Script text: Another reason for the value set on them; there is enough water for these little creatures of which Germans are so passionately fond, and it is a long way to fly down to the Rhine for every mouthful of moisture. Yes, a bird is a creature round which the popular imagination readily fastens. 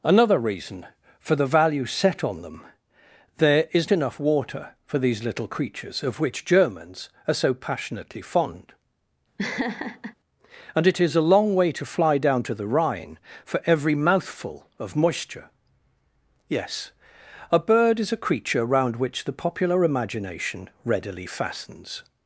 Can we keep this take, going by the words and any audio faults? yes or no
no